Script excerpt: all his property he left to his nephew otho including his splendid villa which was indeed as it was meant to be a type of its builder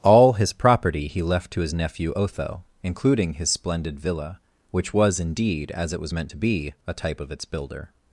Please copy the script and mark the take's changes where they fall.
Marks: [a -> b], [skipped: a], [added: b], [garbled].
all his property he left to his nephew otho including his splendid villa which was indeed as it was meant to be a type of its builder